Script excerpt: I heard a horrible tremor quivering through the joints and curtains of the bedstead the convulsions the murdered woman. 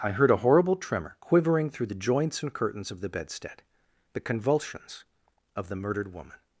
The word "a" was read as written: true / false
true